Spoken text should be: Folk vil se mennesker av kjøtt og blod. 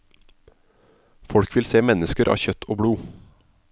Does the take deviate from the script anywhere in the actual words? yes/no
no